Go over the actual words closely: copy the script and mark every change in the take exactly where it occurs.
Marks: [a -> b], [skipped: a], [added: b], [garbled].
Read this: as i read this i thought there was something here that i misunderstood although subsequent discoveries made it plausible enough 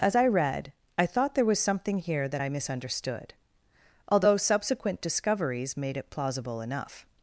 as i read [skipped: this] i thought there was something here that i misunderstood although subsequent discoveries made it plausible enough